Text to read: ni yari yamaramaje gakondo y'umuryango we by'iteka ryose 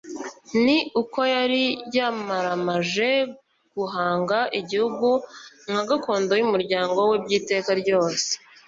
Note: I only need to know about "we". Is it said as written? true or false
true